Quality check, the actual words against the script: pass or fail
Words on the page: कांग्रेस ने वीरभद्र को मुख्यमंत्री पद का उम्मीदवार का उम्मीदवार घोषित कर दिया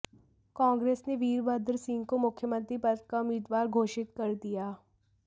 fail